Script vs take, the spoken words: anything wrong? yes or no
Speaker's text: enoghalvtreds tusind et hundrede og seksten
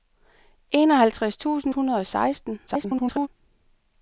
yes